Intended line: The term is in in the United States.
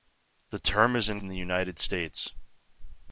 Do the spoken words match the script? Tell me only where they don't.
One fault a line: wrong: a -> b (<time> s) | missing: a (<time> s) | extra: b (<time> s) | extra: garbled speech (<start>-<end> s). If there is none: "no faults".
no faults